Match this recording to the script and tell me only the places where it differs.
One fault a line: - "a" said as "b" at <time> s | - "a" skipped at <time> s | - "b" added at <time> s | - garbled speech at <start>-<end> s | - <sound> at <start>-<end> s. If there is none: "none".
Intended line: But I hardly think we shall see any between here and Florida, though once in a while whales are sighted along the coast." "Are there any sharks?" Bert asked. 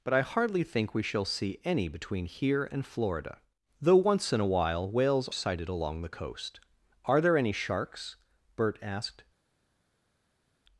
- "are" skipped at 5.3 s